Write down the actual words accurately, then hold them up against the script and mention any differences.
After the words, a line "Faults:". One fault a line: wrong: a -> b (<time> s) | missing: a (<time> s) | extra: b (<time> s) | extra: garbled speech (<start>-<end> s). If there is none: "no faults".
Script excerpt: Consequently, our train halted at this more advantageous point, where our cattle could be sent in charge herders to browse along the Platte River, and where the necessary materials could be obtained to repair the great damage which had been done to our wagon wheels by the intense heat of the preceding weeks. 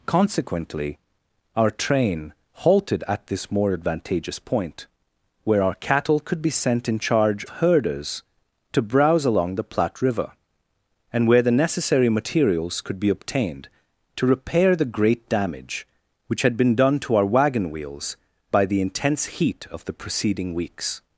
Consequently, our train halted at this more advantageous point, where our cattle could be sent in charge herders to browse along the Platte River, and where the necessary materials could be obtained to repair the great damage which had been done to our wagon wheels by the intense heat of the preceding weeks.
Faults:
no faults